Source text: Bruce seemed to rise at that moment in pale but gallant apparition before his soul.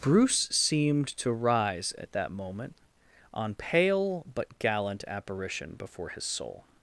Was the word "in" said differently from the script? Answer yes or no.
yes